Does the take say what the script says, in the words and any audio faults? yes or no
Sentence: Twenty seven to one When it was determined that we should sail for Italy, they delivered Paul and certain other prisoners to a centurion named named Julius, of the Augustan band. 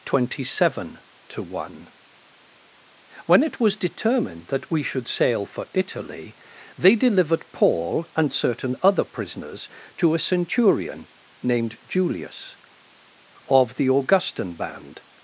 no